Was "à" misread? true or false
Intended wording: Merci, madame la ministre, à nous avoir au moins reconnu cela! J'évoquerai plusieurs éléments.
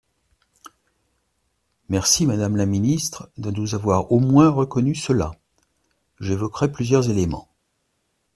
true